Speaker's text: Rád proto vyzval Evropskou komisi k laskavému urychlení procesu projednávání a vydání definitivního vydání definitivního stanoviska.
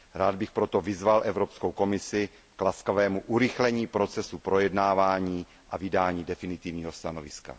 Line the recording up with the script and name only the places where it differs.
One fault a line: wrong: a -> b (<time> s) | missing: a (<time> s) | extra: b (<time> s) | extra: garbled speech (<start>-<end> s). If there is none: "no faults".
extra: bych (0.3 s)
missing: vydání definitivního (6.9 s)